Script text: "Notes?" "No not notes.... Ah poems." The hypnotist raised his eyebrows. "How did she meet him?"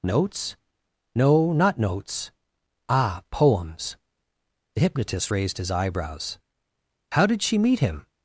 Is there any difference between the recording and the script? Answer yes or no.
no